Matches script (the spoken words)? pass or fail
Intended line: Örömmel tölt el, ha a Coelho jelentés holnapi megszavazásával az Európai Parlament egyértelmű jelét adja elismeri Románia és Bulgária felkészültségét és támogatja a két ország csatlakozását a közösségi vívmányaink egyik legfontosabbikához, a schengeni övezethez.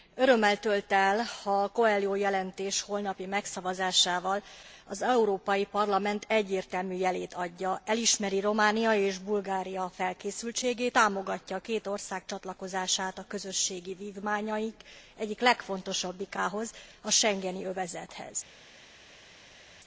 fail